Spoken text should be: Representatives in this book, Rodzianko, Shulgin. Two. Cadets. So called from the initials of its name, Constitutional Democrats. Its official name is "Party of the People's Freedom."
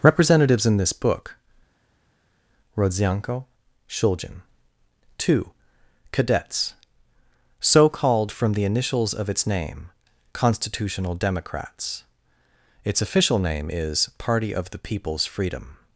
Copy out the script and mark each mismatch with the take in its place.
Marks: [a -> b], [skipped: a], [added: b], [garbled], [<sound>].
Representatives in this book, Rodzianko, Shulgin. Two. Cadets. So called from the initials of its name, Constitutional Democrats. Its official name is "Party of the People's Freedom."